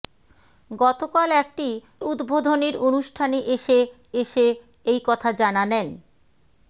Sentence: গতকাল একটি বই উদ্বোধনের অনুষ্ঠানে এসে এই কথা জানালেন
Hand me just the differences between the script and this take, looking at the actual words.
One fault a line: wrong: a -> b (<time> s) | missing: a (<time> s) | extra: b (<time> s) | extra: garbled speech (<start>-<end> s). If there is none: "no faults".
missing: বই (1.7 s)
extra: এসে (4.2 s)